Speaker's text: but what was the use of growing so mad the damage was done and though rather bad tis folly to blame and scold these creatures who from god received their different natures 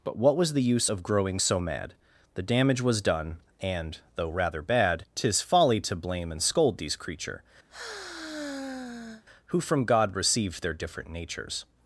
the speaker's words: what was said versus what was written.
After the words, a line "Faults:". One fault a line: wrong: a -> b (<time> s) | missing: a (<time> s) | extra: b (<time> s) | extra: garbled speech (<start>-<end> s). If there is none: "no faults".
but what was the use of growing so mad the damage was done and though rather bad tis folly to blame and scold these creature who from god received their different natures
Faults:
wrong: creatures -> creature (7.0 s)